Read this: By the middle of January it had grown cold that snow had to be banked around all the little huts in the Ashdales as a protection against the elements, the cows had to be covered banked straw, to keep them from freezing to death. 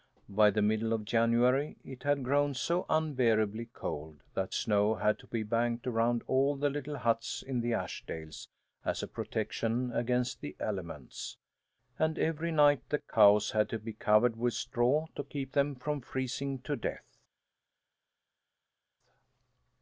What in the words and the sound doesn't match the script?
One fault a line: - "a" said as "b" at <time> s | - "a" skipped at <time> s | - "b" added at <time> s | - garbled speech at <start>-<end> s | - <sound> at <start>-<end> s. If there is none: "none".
- "so unbearably" added at 2.5 s
- "and every night" added at 12.0 s
- "banked" said as "with" at 14.4 s